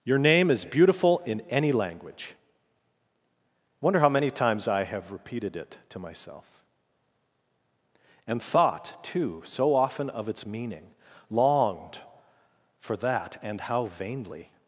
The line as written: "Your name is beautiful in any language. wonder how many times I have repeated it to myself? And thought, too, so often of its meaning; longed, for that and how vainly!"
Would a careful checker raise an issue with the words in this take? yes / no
no